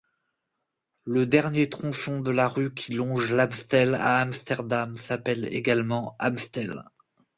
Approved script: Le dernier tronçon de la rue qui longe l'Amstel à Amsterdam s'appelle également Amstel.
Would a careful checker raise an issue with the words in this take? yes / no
no